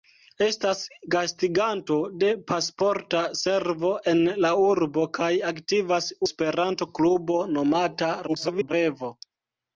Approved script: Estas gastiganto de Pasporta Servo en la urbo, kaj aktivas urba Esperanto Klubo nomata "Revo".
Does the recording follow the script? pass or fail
fail